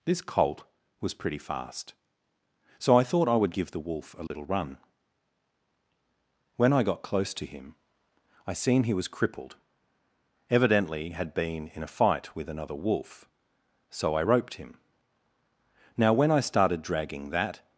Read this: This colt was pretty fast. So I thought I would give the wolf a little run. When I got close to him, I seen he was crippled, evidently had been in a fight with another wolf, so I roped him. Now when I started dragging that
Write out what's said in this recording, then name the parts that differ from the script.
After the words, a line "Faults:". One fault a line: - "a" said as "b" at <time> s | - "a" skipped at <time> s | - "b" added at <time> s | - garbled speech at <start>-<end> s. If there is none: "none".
This colt was pretty fast. So I thought I would give the wolf a little run. When I got close to him, I seen he was crippled, evidently had been in a fight with another wolf, so I roped him. Now when I started dragging that
Faults:
none